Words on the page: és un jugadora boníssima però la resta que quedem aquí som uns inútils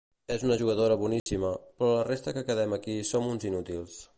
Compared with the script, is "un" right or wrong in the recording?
wrong